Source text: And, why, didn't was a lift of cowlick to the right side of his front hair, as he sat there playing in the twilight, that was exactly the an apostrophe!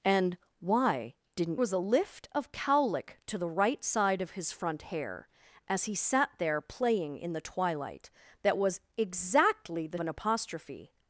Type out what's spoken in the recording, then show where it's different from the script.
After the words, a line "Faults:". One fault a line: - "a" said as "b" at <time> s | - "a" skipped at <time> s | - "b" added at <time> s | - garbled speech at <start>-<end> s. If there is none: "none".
And, why, didn't was a lift of cowlick to the right side of his front hair, as he sat there playing in the twilight, that was exactly the an apostrophe!
Faults:
none